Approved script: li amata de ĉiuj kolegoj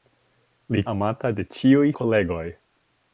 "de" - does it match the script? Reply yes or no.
yes